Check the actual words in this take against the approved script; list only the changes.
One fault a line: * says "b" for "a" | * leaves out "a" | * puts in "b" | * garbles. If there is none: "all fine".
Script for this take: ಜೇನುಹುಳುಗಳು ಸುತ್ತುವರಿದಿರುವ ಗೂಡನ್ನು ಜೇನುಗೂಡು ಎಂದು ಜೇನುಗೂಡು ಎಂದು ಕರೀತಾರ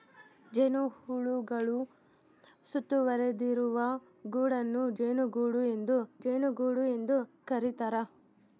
all fine